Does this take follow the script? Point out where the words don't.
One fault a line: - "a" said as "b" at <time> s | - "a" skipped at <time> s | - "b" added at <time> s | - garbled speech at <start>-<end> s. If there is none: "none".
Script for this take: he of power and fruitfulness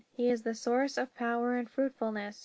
- "is the source" added at 0.3 s